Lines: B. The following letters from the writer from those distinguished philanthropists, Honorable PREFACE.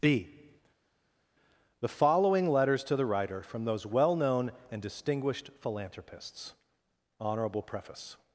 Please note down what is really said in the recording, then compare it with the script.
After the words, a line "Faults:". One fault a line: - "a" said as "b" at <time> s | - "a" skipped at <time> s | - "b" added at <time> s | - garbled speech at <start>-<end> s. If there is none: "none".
B. The following letters to the writer from those well known and distinguished philanthropists, Honorable PREFACE.
Faults:
- "from" said as "to" at 2.8 s
- "well known and" added at 3.8 s